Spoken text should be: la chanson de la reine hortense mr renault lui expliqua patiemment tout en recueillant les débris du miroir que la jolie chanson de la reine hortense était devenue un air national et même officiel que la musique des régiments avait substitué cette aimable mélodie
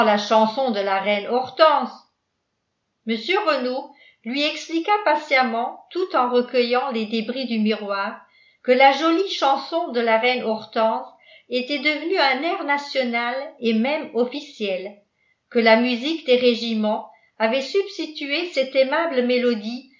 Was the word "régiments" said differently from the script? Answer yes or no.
no